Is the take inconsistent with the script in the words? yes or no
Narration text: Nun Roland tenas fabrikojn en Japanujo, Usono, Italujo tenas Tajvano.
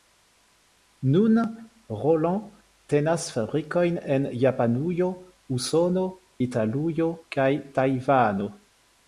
yes